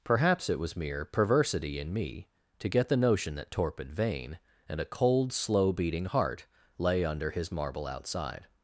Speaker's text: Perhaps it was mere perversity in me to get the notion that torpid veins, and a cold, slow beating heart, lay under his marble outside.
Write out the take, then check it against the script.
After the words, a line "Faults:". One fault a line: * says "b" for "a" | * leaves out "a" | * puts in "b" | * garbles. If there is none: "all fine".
Perhaps it was mere perversity in me to get the notion that torpid vein, and a cold, slow beating heart, lay under his marble outside.
Faults:
* says "vein" for "veins"